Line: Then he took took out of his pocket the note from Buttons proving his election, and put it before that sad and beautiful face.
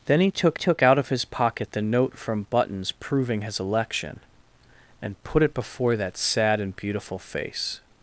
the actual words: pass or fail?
pass